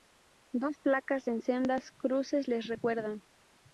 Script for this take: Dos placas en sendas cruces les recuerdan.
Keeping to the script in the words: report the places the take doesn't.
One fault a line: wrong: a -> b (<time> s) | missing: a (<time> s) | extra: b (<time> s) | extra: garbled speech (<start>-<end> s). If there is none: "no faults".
no faults